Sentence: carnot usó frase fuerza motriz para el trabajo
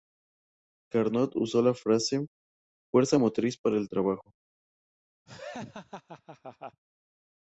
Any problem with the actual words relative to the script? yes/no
yes